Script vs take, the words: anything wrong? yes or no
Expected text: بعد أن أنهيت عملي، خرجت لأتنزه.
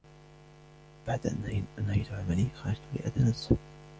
no